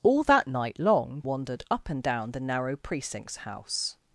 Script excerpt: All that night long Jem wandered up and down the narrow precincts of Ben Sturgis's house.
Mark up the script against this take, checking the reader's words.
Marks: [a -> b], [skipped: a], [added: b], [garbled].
All that night long [skipped: Jem] wandered up and down the narrow precincts [skipped: of Ben Sturgis's] house.